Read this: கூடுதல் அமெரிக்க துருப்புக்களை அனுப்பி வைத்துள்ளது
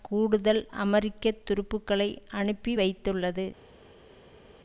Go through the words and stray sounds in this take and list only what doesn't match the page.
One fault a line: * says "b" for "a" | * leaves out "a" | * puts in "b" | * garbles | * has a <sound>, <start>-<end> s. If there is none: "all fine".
all fine